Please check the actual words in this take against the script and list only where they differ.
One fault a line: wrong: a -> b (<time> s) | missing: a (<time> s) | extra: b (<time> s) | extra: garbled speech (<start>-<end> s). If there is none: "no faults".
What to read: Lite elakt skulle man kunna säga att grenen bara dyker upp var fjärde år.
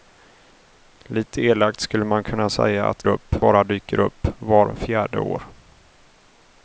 wrong: grenen -> upp (3.1 s)